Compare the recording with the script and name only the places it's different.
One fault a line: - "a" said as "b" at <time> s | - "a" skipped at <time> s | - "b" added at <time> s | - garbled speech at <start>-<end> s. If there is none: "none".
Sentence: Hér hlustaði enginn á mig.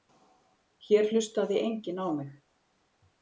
none